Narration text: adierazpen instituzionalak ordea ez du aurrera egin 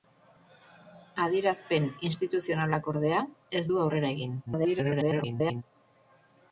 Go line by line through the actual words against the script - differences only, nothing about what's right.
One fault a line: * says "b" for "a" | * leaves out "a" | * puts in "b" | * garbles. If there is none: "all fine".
* garbles